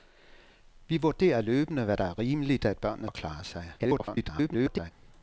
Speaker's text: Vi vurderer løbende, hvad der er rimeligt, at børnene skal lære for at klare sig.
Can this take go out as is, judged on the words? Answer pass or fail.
fail